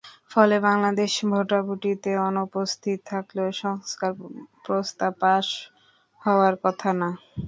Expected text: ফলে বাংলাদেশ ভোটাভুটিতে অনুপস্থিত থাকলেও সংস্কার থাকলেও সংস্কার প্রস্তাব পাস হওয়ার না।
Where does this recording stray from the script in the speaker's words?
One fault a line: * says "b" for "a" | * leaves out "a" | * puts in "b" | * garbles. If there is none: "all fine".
* leaves out "থাকলেও সংস্কার"
* puts in "কথা"